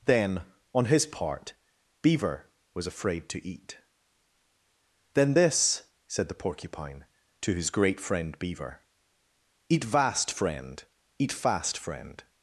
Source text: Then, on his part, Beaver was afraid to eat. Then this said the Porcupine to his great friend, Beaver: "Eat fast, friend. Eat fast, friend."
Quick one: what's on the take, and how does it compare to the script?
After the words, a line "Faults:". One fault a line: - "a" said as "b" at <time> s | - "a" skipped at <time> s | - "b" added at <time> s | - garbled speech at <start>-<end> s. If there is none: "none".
Then, on his part, Beaver was afraid to eat. Then this said the Porcupine to his great friend, Beaver: "Eat vast, friend. Eat fast, friend."
Faults:
- "fast" said as "vast" at 9.8 s